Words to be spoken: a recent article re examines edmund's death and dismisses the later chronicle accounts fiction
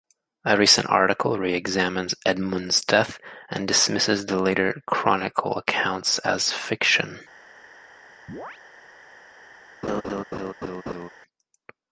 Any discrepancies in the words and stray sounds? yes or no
yes